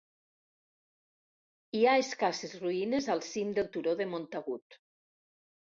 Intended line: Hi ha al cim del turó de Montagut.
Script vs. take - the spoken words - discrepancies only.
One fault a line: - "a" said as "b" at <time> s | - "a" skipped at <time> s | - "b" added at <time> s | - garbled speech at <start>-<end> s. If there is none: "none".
- "escasses ruïnes" added at 2.0 s